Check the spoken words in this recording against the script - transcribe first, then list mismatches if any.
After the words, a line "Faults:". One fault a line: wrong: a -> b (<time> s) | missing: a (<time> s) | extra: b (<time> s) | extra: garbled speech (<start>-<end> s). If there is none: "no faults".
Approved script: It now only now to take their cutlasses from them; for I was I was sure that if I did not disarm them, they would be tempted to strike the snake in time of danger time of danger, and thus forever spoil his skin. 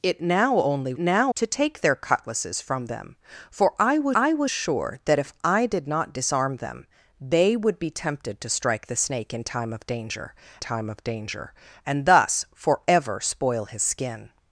It now only now to take their cutlasses from them; for I was I was sure that if I did not disarm them, they would be tempted to strike the snake in time of danger time of danger, and thus forever spoil his skin.
Faults:
no faults